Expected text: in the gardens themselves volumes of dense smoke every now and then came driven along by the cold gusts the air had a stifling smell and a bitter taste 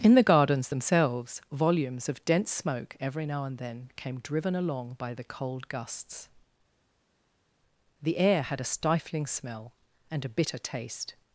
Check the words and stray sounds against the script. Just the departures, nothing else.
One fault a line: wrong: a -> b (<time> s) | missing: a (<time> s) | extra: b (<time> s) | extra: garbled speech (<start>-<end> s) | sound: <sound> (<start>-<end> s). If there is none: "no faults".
no faults